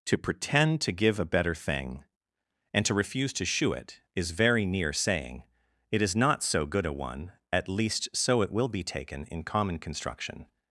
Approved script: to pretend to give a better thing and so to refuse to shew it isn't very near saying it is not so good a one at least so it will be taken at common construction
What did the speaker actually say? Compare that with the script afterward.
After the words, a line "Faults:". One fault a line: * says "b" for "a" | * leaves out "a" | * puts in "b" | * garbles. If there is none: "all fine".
to pretend to give a better thing and to refuse to shew it is very near saying it is not so good a one at least so it will be taken in common construction
Faults:
* leaves out "so"
* says "is" for "isn't"
* says "in" for "at"